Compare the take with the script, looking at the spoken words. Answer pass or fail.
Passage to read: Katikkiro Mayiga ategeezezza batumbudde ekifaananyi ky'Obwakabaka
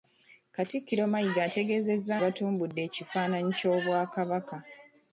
pass